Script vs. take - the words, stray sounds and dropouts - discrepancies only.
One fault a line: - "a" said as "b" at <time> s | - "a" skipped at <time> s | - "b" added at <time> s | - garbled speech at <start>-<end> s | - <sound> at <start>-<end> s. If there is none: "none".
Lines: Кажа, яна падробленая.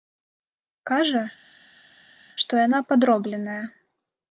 - "што" added at 2.4 s